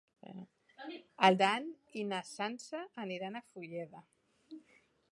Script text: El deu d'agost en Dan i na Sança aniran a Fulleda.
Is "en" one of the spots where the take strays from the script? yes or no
yes